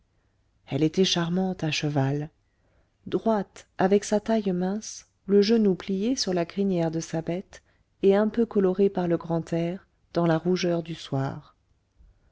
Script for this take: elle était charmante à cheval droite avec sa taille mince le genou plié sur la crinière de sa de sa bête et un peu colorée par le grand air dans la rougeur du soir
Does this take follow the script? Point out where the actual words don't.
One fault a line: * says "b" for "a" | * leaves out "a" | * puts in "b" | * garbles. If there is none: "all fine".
* leaves out "de sa"